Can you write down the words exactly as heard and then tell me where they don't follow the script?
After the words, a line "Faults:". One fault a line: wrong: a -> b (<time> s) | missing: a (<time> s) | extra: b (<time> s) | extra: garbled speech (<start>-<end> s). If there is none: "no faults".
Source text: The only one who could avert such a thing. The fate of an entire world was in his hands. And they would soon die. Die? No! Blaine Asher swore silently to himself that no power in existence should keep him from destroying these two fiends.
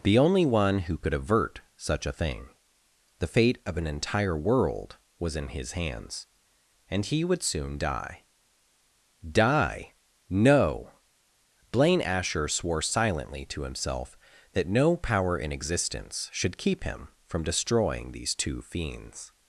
The only one who could avert such a thing. The fate of an entire world was in his hands. And he would soon die. Die? No! Blaine Asher swore silently to himself that no power in existence should keep him from destroying these two fiends.
Faults:
wrong: they -> he (7.0 s)